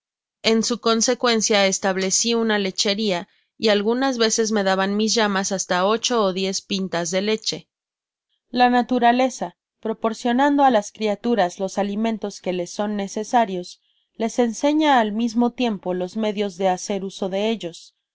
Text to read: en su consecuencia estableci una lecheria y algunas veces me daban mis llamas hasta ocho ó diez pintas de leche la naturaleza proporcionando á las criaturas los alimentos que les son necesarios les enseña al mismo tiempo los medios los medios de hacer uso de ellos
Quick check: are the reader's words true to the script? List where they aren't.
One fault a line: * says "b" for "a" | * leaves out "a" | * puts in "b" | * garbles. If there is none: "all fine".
* leaves out "los medios"